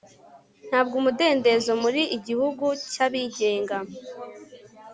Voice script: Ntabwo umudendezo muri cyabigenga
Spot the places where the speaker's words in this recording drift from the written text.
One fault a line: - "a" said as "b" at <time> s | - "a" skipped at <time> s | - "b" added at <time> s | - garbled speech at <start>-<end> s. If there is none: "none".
- "igihugu" added at 2.2 s